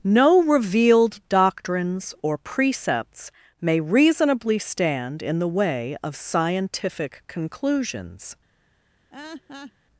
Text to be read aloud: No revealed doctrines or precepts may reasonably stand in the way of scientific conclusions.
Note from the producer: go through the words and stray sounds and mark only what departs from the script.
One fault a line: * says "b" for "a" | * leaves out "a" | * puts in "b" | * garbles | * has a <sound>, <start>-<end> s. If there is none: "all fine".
* has a laugh, 9.1-9.7 s